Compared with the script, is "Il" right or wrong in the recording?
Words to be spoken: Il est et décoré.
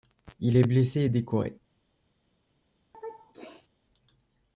right